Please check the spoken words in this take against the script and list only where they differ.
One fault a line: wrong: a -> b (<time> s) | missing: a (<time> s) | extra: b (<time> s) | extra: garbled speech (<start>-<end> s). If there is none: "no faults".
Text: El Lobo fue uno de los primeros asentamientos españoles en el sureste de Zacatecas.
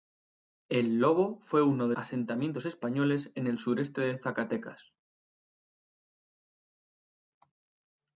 missing: los primeros (1.9 s)